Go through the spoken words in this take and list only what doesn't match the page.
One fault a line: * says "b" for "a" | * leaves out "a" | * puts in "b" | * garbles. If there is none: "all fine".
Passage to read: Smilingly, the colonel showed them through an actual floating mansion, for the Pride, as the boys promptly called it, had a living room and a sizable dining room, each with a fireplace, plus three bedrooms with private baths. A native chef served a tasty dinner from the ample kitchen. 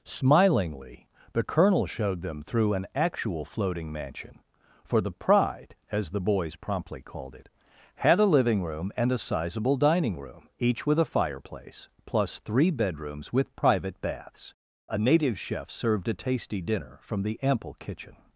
all fine